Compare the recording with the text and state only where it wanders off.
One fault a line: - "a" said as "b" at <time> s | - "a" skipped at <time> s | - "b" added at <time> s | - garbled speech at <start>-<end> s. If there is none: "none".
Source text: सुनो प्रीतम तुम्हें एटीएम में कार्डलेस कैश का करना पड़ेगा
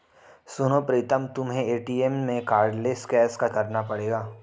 none